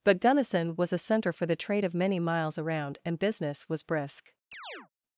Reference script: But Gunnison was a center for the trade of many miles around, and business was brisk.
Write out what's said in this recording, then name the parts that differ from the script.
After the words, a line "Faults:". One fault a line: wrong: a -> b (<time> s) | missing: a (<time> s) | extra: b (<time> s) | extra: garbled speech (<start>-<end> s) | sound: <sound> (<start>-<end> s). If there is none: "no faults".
But Gunnison was a center for the trade of many miles around, and business was brisk.
Faults:
sound: chirp (4.5-4.9 s)